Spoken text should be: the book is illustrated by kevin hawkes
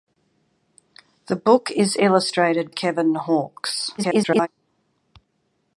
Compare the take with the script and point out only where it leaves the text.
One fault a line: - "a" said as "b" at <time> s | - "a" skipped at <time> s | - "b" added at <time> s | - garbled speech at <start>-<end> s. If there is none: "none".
- "by" skipped at 2.7 s
- garbled speech at 4.0-4.5 s